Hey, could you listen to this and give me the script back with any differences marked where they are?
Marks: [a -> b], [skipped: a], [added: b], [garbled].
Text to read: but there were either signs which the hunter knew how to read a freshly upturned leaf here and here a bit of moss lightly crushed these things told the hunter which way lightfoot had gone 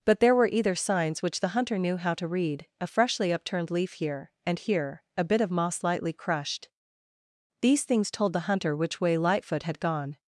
but there were either signs which the hunter knew how to read a freshly upturned leaf here and here a bit of moss lightly crushed these things told the hunter which way lightfoot had gone